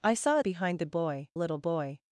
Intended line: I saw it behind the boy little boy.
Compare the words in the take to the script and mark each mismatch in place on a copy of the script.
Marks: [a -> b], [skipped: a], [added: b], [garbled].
I saw it behind the boy little boy.